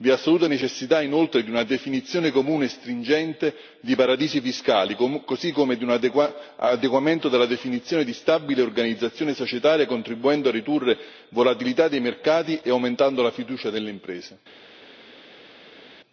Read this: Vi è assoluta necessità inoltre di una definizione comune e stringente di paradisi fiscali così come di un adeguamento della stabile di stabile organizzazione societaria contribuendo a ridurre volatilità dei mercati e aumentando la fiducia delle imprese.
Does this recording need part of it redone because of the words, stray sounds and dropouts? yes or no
yes